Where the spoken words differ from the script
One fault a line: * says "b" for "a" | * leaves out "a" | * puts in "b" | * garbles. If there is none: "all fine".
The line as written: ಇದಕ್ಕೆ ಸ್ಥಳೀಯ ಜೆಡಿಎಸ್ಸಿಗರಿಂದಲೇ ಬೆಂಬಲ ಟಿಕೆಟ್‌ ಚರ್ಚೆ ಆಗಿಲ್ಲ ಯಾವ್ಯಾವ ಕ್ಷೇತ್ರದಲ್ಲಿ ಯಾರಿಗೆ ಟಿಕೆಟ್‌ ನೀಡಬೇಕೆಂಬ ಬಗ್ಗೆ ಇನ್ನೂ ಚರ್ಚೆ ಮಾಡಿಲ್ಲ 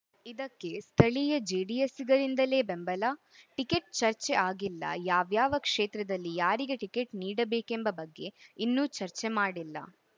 all fine